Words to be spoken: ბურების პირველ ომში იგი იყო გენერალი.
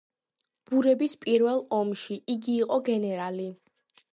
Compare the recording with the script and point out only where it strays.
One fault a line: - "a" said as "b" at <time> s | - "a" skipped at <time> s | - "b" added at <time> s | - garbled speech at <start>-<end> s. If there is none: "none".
none